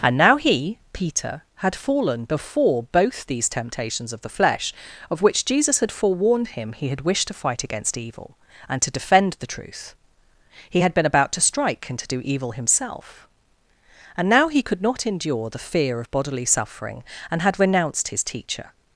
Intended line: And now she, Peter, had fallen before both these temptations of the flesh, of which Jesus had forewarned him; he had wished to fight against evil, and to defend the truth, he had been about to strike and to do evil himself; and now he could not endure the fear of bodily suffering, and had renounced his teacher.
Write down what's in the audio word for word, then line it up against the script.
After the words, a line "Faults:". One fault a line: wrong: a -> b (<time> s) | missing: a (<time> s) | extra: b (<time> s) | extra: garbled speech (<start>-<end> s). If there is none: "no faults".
And now he, Peter, had fallen before both these temptations of the flesh, of which Jesus had forewarned him; he had wished to fight against evil, and to defend the truth, he had been about to strike and to do evil himself; and now he could not endure the fear of bodily suffering, and had renounced his teacher.
Faults:
wrong: she -> he (0.4 s)